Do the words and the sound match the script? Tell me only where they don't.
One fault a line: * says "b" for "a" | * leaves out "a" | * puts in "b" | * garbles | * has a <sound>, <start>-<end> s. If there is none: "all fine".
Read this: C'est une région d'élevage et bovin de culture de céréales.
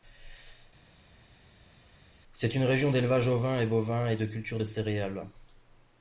* puts in "ovin"
* puts in "et"